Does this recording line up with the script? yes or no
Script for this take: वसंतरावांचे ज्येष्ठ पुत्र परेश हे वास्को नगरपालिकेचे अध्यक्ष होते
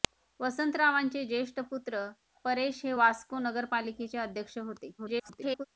no